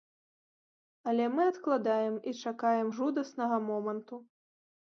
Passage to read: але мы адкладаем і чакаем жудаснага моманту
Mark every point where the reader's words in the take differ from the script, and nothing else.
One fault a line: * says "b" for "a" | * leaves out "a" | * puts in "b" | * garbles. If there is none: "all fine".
all fine